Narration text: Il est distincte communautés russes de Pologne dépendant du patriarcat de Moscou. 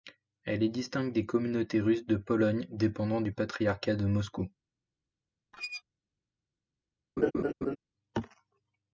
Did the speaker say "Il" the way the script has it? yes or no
no